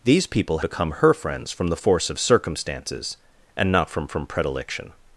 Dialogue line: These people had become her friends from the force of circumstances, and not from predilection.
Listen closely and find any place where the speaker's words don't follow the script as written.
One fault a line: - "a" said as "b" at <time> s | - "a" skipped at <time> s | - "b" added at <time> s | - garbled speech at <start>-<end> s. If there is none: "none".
- "had" skipped at 0.6 s
- "from" added at 4.1 s